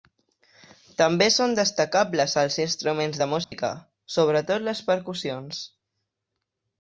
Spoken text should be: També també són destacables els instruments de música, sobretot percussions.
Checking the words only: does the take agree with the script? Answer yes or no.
no